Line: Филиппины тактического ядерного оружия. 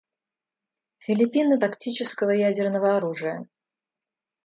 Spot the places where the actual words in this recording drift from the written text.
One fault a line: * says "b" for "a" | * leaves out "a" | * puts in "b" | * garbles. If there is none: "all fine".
all fine